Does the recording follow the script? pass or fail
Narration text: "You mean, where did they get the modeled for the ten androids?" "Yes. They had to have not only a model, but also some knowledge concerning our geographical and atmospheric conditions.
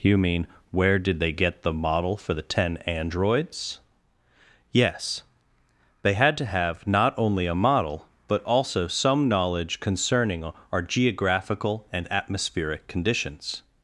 fail